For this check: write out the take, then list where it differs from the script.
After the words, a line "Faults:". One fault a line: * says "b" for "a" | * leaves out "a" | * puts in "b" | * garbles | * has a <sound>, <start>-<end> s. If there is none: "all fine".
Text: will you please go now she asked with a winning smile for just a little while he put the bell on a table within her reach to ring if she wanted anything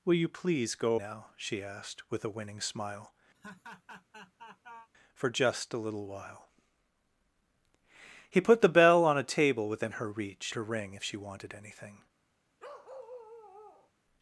will you please go now she asked with a winning smile for just a little while he put the bell on a table within her reach to ring if she wanted anything
Faults:
* has a laugh, 3.3-4.9 s
* has a bark, 12.6-13.9 s